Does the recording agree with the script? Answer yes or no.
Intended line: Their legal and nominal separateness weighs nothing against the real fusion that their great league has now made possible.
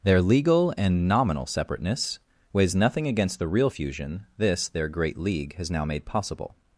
no